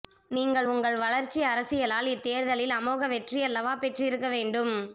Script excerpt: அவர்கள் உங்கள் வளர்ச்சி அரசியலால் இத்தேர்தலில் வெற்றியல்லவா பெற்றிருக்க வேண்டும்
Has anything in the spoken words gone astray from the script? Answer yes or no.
yes